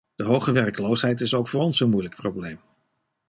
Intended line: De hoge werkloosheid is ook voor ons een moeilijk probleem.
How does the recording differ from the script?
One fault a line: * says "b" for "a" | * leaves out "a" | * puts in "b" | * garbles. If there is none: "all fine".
all fine